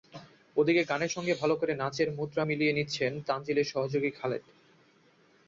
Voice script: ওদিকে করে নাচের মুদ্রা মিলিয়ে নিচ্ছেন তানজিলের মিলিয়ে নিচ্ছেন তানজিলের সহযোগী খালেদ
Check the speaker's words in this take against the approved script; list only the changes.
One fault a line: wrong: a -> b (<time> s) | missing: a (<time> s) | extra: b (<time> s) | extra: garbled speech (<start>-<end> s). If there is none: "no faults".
extra: গানের সঙ্গে ভালো (0.8 s)
missing: মিলিয়ে নিচ্ছেন তানজিলের (3.7 s)